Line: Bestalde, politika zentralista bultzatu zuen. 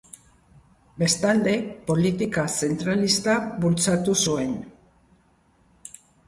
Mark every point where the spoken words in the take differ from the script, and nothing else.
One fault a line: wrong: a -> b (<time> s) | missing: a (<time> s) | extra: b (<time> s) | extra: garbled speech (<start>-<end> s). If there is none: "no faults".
no faults